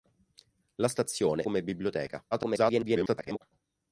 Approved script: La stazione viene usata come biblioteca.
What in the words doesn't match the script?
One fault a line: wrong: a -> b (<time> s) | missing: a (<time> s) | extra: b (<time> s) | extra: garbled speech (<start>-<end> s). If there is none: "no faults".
missing: viene usata (1.5 s)
extra: garbled speech (2.3-3.4 s)